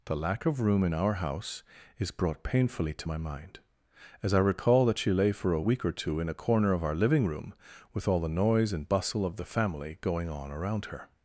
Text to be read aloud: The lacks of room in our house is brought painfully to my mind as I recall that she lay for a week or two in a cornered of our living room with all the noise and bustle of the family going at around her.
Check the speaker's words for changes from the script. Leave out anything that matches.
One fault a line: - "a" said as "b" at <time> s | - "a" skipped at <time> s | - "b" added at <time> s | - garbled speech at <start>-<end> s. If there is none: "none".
- "lacks" said as "lack" at 0.2 s
- "cornered" said as "corner" at 6.3 s
- "at" said as "on" at 10.3 s